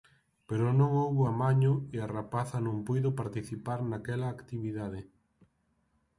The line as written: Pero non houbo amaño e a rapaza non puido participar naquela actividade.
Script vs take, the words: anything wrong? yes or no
no